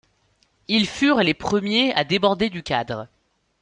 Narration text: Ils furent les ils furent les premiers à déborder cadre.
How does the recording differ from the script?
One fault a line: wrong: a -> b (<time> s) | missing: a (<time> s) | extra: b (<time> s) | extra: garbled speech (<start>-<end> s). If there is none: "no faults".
missing: ils furent les (1.3 s)
extra: du (2.5 s)